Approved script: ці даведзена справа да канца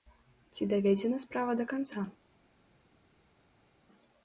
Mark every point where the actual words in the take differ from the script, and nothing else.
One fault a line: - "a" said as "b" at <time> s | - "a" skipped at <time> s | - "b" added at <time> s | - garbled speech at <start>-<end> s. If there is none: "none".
none